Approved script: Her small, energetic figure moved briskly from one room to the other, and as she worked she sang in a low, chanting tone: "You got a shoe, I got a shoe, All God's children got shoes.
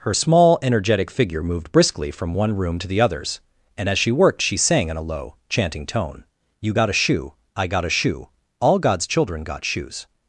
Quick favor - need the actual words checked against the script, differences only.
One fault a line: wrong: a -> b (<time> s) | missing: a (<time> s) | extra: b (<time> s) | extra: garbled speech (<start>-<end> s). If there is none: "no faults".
wrong: other -> others (3.0 s)